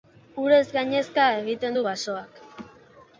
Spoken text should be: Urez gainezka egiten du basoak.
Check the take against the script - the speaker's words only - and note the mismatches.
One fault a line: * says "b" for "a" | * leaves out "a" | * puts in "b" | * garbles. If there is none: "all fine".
all fine